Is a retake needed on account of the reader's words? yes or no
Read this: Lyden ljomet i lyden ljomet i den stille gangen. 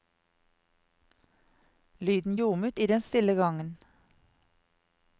yes